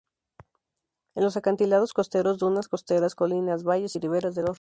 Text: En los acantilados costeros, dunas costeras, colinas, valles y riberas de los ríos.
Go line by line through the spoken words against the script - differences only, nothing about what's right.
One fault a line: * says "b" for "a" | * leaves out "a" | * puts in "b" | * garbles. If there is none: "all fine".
all fine